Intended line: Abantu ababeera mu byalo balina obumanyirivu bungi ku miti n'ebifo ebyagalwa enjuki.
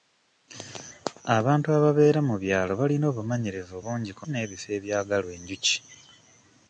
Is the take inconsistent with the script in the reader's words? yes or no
yes